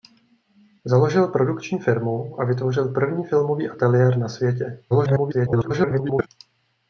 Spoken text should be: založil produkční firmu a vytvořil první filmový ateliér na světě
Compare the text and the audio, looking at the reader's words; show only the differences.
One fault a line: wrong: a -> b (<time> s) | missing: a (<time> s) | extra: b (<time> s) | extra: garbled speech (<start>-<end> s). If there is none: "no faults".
extra: garbled speech (4.9-6.3 s)